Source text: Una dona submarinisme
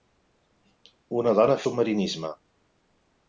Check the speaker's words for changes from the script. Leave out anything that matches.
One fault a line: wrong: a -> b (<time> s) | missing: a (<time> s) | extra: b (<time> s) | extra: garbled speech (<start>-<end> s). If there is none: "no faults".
no faults